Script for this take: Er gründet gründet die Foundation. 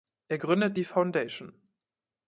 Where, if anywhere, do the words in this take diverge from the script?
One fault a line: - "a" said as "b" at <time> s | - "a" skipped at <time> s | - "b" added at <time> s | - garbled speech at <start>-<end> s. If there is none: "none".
- "gründet" skipped at 0.8 s